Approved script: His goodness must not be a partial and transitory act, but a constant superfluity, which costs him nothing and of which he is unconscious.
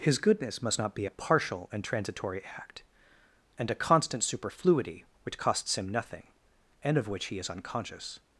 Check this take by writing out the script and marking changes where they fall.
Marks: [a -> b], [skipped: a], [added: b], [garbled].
His goodness must not be a partial and transitory act, [but -> and] a constant superfluity, which costs him nothing and of which he is unconscious.